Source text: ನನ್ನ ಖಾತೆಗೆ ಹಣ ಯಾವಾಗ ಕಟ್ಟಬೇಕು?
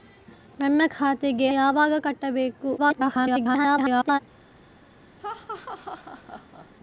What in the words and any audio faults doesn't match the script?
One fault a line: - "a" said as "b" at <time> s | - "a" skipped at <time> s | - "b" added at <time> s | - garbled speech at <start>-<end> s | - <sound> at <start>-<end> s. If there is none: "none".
- "ಹಣ" skipped at 1.5 s
- garbled speech at 2.8-4.2 s
- laugh at 5.2-6.7 s